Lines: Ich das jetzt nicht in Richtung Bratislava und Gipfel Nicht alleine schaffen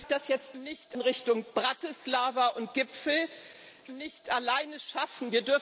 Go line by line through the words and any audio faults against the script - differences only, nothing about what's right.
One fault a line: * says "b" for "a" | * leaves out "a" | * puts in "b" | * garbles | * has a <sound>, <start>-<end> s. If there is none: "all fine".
all fine